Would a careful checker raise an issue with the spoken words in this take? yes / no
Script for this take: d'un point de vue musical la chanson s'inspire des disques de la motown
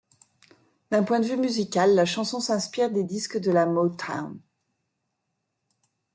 no